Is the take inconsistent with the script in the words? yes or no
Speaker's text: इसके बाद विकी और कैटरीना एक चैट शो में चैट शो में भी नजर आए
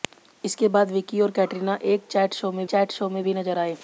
no